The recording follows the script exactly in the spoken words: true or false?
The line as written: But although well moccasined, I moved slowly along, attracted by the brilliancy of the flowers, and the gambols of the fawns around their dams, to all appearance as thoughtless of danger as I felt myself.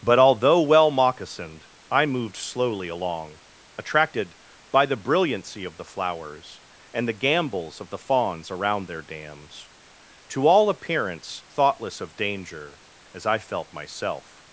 false